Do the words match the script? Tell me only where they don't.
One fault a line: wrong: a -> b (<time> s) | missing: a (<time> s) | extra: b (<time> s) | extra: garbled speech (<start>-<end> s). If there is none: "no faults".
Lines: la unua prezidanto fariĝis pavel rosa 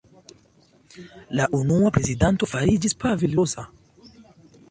no faults